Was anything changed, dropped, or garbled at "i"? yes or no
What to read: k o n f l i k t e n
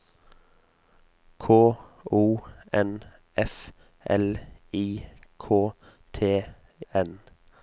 no